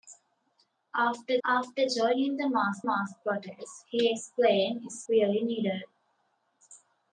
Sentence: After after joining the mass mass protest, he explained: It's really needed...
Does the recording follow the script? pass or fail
pass